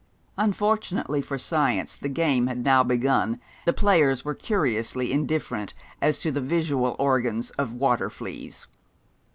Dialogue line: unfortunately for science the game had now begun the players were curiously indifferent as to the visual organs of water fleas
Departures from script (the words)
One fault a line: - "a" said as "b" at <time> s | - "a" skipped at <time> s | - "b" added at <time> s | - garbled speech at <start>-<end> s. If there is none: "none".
none